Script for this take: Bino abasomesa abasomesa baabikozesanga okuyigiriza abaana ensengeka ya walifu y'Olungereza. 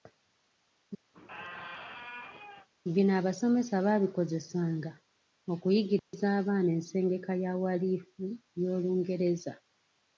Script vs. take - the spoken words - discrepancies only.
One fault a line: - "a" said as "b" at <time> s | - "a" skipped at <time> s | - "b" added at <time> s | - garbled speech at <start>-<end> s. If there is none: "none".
- "abasomesa" skipped at 3.7 s